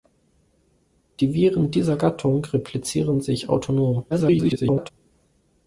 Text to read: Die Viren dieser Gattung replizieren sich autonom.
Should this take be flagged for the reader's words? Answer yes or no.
yes